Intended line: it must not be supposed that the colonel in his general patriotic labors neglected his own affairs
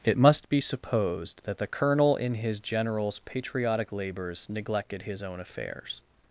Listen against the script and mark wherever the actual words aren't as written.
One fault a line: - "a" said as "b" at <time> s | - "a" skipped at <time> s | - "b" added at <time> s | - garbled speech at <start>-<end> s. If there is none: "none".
- "not" skipped at 0.5 s
- "general" said as "generals" at 2.6 s